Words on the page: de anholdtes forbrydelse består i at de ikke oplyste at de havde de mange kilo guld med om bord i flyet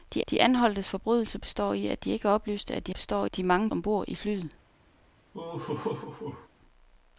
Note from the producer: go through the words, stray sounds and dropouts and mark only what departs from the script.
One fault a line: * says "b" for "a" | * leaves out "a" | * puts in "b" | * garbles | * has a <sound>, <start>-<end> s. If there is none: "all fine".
* puts in "de"
* says "består" for "havde"
* leaves out "kilo guld med"
* has a laugh, 5.3-6.5 s